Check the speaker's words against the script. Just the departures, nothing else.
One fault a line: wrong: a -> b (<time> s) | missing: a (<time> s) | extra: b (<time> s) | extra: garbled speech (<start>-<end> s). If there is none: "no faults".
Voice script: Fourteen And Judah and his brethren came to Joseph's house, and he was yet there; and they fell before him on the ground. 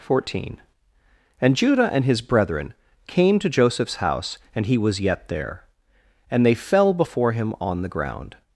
no faults